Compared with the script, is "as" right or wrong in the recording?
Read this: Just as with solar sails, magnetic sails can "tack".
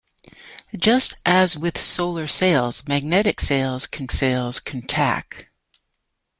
right